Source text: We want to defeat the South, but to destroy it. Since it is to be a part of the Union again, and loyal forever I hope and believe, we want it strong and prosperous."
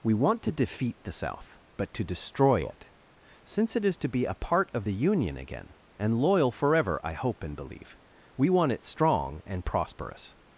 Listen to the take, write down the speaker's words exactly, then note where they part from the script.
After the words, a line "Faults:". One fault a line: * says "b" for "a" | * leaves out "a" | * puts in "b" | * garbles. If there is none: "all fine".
We want to defeat the South, but to destroy it. Since it is to be a part of the Union again, and loyal forever I hope and believe, we want it strong and prosperous."
Faults:
all fine